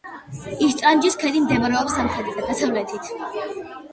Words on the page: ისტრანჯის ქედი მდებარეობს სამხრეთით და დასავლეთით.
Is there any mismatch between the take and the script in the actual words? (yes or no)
no